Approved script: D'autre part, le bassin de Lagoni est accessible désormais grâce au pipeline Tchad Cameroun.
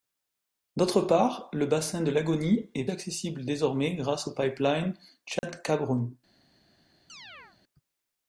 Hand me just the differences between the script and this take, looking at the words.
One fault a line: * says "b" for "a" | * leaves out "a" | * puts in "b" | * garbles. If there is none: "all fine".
all fine